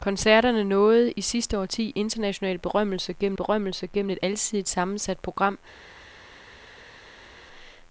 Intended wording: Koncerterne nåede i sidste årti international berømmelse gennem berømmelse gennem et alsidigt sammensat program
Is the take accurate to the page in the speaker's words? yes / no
yes